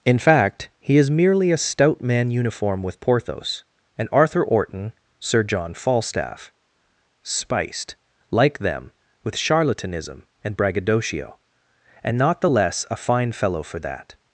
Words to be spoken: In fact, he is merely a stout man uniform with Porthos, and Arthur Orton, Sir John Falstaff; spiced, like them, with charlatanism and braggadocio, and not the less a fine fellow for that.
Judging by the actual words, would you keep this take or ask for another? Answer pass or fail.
pass